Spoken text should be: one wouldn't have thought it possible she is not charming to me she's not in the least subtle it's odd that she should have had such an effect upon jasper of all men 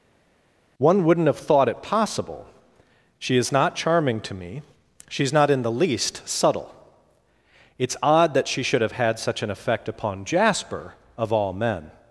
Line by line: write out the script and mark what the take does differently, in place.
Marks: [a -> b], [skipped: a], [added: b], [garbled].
one wouldn't have thought it possible she is not charming to me she's not in the least subtle it's odd that she should have had such an effect upon jasper of all men